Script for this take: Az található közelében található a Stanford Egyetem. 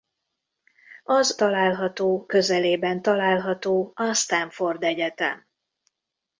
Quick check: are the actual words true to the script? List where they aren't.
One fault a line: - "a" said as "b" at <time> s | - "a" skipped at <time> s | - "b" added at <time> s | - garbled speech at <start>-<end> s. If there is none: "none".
none